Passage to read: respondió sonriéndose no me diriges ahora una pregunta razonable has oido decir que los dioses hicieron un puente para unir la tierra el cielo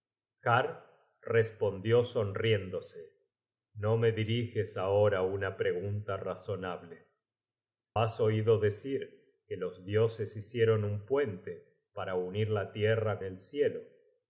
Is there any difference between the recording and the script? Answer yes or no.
no